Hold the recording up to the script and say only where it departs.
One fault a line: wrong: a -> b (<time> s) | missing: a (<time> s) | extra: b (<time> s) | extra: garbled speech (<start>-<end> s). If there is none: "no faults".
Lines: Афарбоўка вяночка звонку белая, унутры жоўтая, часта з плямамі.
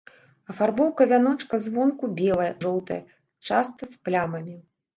missing: унутры (2.5 s)